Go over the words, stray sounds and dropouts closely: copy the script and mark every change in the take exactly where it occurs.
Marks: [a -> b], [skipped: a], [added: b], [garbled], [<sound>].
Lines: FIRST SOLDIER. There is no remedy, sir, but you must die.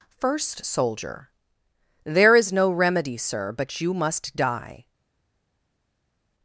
FIRST SOLDIER. There is no remedy, sir, but you must die.